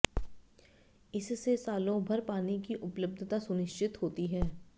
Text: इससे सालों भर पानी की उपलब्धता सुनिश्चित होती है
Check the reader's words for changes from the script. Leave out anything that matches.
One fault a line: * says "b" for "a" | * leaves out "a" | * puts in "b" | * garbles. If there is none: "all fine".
all fine